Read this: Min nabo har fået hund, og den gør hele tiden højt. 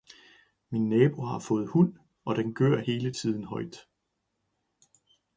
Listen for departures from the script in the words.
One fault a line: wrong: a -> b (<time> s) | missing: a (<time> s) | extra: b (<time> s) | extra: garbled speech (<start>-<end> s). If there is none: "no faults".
no faults